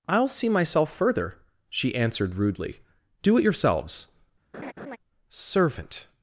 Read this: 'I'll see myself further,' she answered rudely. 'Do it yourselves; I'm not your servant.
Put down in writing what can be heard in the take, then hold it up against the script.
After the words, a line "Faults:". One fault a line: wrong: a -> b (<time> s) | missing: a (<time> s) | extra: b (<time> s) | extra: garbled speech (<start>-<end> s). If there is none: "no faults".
'I'll see myself further,' she answered rudely. 'Do it yourselves; servant.
Faults:
missing: I'm not your (4.1 s)